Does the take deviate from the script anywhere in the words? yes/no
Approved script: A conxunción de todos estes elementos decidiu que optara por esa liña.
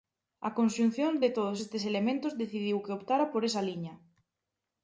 no